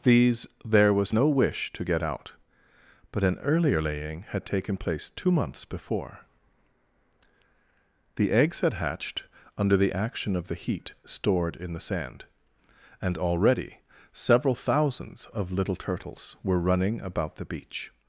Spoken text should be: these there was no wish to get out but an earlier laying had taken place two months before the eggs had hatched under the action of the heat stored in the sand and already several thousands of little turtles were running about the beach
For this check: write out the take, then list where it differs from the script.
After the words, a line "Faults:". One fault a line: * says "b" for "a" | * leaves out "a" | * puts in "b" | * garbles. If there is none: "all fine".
these there was no wish to get out but an earlier laying had taken place two months before the eggs had hatched under the action of the heat stored in the sand and already several thousands of little turtles were running about the beach
Faults:
all fine